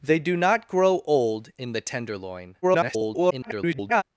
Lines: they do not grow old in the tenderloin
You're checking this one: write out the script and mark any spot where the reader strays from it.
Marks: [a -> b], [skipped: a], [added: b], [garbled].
they do not grow old in the tenderloin [garbled]